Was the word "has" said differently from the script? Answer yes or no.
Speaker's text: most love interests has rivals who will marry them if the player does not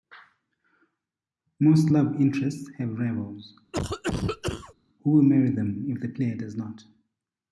yes